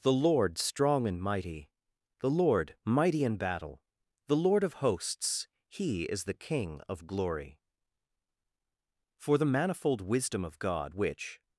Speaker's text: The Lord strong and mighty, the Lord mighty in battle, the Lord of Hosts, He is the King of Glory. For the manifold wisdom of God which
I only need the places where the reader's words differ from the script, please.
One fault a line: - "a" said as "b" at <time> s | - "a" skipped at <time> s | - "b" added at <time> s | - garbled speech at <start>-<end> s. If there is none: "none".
none